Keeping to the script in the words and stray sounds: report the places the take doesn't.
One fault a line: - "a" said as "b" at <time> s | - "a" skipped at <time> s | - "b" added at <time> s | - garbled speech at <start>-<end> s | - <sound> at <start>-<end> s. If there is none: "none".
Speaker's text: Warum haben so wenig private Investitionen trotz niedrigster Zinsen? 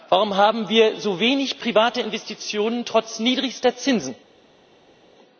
- "wir" added at 0.7 s